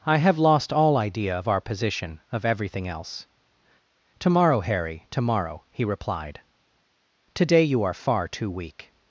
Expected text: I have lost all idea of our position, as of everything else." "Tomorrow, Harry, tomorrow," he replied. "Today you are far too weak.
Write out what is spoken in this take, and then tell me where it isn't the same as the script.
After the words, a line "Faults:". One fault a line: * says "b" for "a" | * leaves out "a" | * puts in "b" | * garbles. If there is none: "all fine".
I have lost all idea of our position, of everything else." "Tomorrow, Harry, tomorrow," he replied. "Today you are far too weak.
Faults:
* leaves out "as"